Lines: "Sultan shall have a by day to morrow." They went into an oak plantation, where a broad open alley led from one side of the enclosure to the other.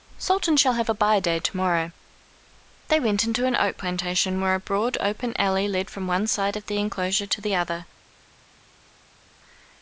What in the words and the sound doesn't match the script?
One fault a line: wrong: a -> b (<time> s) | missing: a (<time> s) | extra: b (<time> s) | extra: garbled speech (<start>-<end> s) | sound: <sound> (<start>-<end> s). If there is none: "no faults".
no faults